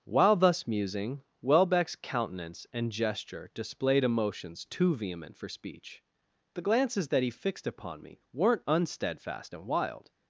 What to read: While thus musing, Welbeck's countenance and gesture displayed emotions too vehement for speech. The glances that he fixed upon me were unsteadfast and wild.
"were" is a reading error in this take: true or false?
true